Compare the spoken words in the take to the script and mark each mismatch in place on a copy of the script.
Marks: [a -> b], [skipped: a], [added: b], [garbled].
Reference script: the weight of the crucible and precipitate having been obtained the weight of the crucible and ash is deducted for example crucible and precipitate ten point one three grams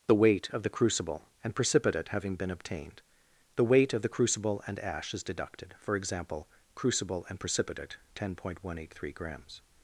the weight of the crucible and precipitate having been obtained the weight of the crucible and ash is deducted for example crucible and precipitate ten point one [added: eight] three grams